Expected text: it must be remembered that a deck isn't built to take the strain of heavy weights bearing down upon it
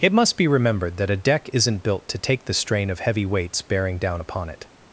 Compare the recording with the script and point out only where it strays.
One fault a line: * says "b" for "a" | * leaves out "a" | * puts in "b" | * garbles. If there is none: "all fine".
all fine